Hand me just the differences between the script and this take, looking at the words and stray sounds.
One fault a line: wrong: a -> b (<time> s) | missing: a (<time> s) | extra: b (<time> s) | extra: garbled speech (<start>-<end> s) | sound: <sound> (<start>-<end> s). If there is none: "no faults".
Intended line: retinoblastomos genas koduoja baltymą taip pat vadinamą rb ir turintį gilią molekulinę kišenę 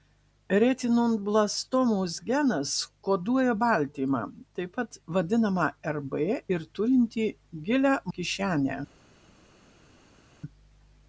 missing: molekulinę (8.0 s)